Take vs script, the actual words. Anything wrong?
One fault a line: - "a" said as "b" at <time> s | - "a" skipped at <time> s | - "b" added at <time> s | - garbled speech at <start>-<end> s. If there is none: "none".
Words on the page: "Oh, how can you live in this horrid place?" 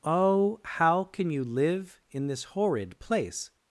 none